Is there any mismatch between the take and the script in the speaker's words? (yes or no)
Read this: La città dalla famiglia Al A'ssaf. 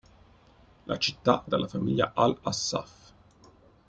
no